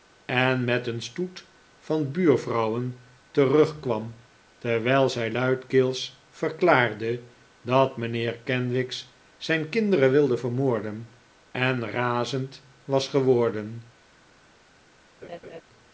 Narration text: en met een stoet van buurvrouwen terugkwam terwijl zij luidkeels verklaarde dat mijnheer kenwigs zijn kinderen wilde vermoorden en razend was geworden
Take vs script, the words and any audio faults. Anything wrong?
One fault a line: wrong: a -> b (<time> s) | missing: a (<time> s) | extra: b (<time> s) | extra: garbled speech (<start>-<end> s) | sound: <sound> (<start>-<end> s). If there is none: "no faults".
sound: laugh (15.2-15.6 s)